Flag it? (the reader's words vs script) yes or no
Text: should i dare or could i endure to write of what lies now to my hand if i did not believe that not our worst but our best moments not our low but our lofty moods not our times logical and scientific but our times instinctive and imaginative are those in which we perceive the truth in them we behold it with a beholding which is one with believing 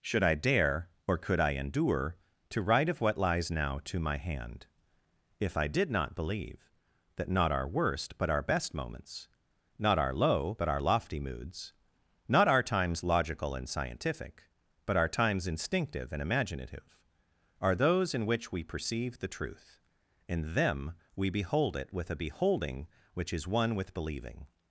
no